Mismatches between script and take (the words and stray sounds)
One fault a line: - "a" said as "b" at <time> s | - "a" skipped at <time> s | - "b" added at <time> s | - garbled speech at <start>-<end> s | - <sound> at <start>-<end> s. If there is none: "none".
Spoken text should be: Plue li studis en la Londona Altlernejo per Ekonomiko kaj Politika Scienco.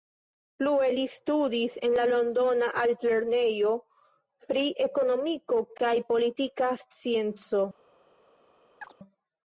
- "per" said as "pri" at 4.5 s
- chirp at 8.8-8.9 s